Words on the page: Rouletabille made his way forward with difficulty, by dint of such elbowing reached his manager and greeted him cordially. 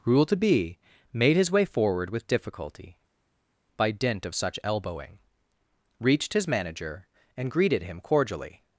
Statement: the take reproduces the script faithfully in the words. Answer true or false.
true